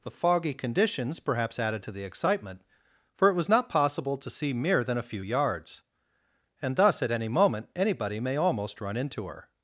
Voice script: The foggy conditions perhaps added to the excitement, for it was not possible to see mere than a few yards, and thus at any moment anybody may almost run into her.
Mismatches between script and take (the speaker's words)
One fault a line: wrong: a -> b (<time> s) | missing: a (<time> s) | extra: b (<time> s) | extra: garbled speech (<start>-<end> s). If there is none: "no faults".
no faults